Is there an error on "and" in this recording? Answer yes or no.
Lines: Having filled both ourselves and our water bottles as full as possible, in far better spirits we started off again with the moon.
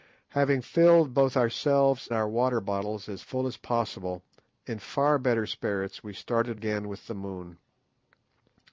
yes